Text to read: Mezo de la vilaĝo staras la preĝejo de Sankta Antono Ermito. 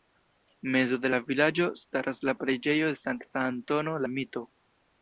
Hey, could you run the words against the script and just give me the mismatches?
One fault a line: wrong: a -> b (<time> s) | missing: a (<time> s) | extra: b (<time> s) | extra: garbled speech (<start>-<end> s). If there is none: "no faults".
no faults